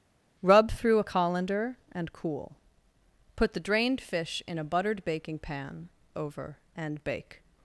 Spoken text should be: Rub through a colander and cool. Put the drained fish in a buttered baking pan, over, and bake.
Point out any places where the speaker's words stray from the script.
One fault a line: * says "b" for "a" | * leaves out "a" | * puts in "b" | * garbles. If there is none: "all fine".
all fine